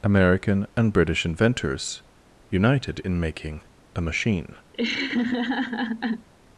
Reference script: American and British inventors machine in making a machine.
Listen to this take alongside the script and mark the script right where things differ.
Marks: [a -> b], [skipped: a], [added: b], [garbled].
American and British inventors [machine -> united] in making a machine.